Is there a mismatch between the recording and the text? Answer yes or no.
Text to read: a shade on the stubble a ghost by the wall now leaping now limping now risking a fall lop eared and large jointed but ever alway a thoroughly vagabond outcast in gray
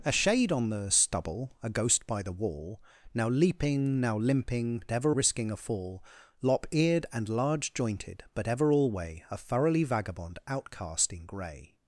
yes